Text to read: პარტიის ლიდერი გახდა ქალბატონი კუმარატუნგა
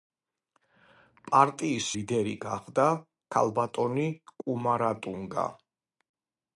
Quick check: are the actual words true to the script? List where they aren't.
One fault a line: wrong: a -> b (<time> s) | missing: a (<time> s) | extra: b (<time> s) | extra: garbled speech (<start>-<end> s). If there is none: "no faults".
no faults